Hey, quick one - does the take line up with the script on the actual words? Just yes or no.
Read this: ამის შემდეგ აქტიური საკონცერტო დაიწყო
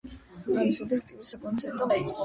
yes